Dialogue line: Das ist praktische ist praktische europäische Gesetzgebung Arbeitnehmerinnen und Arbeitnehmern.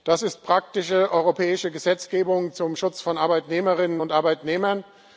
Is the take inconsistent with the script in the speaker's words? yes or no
yes